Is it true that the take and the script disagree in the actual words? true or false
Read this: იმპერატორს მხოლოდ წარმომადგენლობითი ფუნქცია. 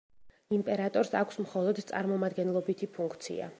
true